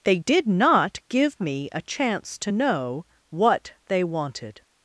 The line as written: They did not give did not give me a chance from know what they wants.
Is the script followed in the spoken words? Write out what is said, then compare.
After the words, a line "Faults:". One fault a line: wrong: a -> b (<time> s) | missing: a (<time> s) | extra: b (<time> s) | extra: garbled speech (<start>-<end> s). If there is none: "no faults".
They did not give me a chance to know what they wanted.
Faults:
missing: did not give (1.4 s)
wrong: from -> to (2.4 s)
wrong: wants -> wanted (4.0 s)